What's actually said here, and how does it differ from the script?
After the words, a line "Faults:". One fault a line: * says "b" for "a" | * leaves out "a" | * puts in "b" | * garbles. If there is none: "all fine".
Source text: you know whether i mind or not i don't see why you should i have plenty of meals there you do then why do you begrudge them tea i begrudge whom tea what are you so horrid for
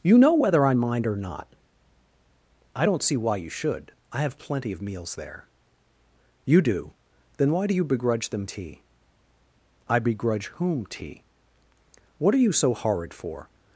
you know whether i mind or not i don't see why you should i have plenty of meals there you do then why do you begrudge them tea i begrudge whom tea what are you so horrid for
Faults:
all fine